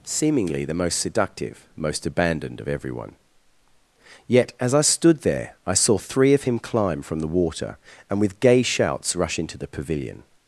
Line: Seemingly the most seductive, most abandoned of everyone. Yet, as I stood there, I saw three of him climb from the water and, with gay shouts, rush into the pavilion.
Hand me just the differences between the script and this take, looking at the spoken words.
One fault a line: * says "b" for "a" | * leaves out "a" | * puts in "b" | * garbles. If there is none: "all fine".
all fine